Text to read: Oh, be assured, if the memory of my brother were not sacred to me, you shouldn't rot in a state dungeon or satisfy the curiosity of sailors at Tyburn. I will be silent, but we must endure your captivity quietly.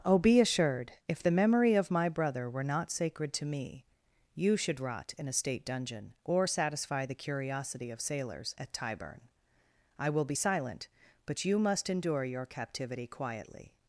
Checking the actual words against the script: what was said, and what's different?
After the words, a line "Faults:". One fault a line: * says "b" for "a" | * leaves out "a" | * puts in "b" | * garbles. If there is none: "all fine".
Oh, be assured, if the memory of my brother were not sacred to me, you should rot in a state dungeon or satisfy the curiosity of sailors at Tyburn. I will be silent, but you must endure your captivity quietly.
Faults:
* says "should" for "shouldn't"
* says "you" for "we"